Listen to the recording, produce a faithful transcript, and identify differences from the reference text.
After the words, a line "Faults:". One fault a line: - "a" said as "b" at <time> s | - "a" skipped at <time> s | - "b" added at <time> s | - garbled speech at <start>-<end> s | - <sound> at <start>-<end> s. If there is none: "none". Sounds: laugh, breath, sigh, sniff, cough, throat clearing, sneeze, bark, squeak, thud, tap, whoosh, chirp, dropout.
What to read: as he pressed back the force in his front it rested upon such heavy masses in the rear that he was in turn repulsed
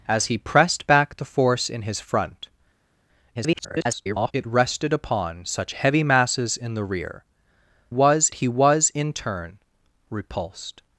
as he pressed back the force in his front [garbled] it rested upon such heavy masses in the rear was he was in turn repulsed
Faults:
- garbled speech at 3.3-4.3 s
- "that" said as "was" at 7.9 s